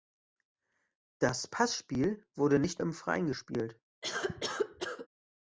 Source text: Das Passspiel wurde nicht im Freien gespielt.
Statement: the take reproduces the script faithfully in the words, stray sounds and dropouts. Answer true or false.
false